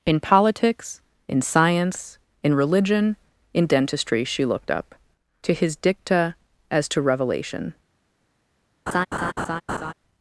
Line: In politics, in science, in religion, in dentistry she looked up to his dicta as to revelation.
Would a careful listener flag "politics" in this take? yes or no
no